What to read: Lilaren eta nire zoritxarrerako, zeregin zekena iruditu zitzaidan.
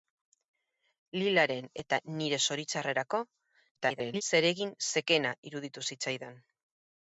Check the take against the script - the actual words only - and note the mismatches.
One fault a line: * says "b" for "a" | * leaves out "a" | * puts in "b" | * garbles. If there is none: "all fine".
* garbles